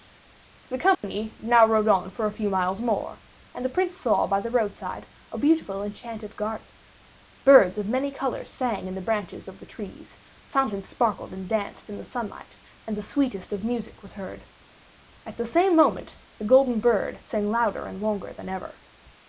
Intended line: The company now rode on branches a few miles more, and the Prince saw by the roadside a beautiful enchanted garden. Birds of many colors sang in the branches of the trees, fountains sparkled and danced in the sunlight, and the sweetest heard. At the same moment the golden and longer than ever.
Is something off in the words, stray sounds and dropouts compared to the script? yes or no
yes